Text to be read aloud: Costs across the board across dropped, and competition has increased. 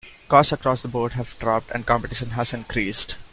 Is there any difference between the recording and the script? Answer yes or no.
yes